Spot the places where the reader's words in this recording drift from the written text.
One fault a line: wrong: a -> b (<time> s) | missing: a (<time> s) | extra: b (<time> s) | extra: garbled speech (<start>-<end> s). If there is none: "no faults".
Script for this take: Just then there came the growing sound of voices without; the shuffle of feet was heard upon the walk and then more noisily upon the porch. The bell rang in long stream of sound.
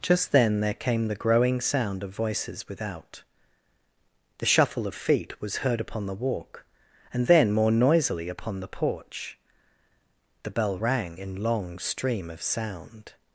no faults